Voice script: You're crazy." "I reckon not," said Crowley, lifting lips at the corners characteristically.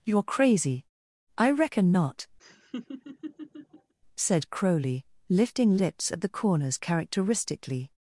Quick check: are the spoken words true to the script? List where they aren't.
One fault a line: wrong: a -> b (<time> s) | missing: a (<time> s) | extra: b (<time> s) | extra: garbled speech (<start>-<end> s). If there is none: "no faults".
no faults